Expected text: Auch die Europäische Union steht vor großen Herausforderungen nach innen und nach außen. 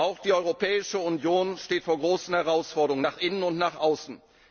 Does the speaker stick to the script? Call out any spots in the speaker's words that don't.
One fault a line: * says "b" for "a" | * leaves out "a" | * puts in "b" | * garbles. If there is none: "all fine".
all fine